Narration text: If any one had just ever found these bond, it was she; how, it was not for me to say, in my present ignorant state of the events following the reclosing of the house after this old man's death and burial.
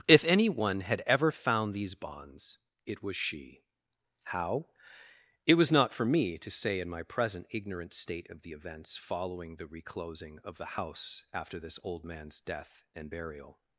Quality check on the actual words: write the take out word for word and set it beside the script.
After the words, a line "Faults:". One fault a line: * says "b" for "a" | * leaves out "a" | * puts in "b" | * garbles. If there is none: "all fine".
If any one had ever found these bonds, it was she; how, it was not for me to say, in my present ignorant state of the events following the reclosing of the house after this old man's death and burial.
Faults:
* leaves out "just"
* says "bonds" for "bond"